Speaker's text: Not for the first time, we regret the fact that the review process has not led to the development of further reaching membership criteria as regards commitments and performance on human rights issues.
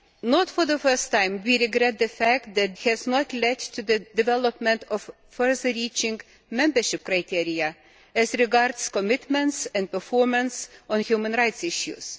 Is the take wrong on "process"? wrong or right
wrong